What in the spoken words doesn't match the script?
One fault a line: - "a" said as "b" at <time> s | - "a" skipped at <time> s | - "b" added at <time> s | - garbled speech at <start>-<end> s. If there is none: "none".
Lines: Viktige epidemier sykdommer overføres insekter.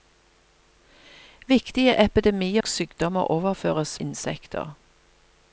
none